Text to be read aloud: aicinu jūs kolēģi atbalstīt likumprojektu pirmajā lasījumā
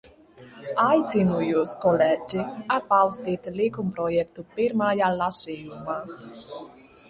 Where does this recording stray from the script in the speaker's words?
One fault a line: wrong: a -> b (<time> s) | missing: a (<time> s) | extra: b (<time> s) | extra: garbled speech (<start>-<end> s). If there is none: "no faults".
no faults